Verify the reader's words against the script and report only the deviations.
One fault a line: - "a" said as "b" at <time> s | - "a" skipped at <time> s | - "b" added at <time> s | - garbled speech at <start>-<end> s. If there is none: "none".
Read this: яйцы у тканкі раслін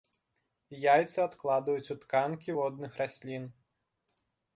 - "адкладваюць" added at 1.2 s
- "водных" added at 2.6 s